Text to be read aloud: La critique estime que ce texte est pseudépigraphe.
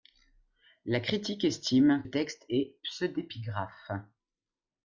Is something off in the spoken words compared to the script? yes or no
yes